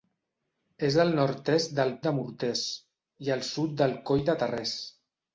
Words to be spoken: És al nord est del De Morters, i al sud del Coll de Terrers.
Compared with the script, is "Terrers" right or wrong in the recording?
right